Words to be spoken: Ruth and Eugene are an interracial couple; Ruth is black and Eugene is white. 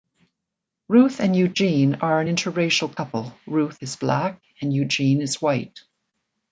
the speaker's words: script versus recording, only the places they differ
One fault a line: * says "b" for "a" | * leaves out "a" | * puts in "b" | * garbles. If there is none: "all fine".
all fine